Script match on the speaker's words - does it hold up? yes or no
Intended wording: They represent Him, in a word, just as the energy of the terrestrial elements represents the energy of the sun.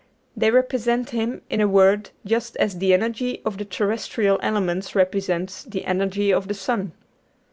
yes